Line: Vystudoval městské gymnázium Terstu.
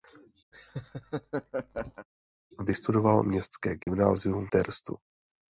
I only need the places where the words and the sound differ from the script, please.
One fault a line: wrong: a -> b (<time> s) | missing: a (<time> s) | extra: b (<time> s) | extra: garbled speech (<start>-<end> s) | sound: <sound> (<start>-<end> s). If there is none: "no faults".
sound: laugh (0.5-2.1 s)
sound: dropout (3.8-3.9 s)